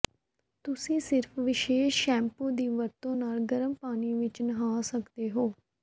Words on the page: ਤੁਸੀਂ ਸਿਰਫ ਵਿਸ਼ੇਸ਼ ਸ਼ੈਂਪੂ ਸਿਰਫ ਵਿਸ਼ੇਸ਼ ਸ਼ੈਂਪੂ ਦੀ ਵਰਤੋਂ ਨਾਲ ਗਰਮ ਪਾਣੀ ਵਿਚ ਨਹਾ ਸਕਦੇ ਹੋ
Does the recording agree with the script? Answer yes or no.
no